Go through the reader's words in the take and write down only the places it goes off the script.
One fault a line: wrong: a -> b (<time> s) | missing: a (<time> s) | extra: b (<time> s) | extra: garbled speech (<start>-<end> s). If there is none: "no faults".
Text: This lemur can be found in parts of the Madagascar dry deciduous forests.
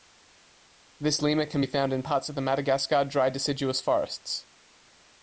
no faults